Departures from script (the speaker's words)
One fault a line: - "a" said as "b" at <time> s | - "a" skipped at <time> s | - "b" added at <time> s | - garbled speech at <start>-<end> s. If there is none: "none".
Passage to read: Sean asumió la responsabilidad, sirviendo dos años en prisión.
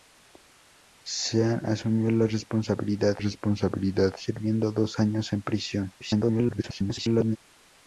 - "responsabilidad" added at 3.2 s
- garbled speech at 6.0-7.4 s